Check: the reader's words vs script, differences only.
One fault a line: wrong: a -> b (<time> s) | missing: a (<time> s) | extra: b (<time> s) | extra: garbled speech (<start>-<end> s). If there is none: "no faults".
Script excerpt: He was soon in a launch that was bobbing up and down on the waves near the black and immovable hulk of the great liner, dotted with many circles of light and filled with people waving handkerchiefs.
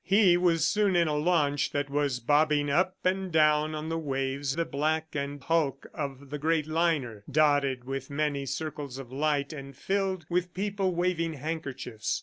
missing: near (4.6 s)
missing: immovable (5.4 s)